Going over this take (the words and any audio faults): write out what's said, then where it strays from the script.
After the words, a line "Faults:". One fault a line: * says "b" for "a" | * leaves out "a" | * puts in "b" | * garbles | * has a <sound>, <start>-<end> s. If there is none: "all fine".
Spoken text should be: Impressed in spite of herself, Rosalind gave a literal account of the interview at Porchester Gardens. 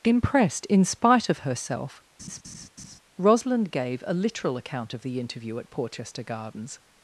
Impressed in spite of herself, Rosalind gave a literal account of the interview at Porchester Gardens.
Faults:
* has a laugh, 2.2-3.0 s